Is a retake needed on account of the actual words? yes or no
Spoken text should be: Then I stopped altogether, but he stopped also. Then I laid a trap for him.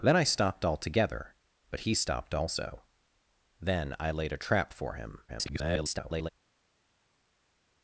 yes